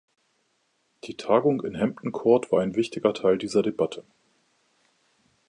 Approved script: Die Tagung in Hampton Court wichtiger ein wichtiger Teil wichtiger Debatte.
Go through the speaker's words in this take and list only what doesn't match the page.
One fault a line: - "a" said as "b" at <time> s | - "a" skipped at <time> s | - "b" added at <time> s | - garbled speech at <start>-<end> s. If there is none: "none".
- "wichtiger" said as "war" at 2.5 s
- "wichtiger" said as "dieser" at 3.4 s